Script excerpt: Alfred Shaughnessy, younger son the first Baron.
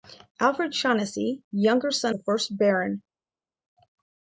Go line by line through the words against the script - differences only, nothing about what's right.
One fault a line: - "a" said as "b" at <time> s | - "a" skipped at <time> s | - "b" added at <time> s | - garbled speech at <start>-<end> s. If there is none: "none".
none